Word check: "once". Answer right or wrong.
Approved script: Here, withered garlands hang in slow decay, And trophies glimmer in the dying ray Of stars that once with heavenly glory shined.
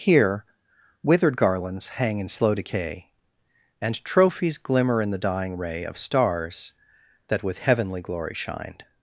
wrong